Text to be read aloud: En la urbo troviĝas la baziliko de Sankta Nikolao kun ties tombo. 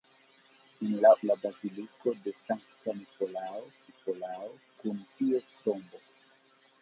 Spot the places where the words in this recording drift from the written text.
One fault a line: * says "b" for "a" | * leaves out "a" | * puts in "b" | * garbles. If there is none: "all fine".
* leaves out "urbo troviĝas"
* puts in "Nikolao"